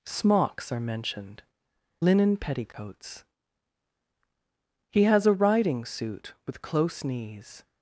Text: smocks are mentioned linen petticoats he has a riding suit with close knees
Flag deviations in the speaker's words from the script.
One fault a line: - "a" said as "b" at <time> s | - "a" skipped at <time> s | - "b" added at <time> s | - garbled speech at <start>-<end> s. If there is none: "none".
none